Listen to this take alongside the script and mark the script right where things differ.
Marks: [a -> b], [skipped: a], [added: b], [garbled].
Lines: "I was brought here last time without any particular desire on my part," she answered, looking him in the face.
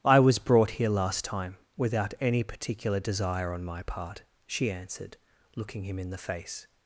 "I was brought here last time without any particular desire on my part," she answered, looking him in the face.